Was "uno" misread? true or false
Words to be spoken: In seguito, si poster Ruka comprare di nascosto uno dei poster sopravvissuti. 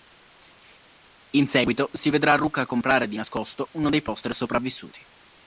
false